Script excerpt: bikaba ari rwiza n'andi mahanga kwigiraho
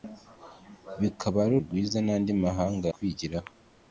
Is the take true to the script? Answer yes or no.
yes